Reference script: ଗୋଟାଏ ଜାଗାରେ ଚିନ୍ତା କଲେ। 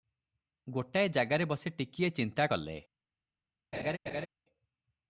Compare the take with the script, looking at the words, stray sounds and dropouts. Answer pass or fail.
fail